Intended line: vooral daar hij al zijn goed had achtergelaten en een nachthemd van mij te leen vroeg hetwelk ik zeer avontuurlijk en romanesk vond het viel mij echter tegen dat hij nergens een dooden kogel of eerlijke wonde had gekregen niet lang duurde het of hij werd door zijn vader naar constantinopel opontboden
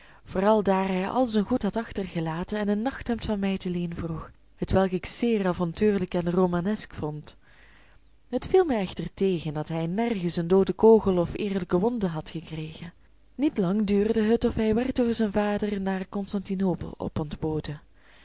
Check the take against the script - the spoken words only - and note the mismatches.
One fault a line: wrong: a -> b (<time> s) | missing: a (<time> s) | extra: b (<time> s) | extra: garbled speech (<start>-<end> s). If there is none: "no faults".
no faults